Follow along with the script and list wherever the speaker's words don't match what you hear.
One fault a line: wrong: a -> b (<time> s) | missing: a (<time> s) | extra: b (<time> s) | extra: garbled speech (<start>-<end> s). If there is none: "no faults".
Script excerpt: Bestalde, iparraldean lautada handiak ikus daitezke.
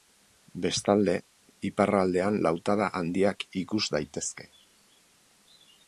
no faults